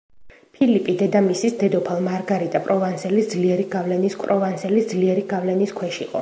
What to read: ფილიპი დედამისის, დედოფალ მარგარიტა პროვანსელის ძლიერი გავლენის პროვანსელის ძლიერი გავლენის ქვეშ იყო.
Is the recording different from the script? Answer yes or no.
no